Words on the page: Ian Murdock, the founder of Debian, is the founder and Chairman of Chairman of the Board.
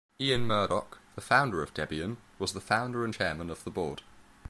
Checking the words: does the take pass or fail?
fail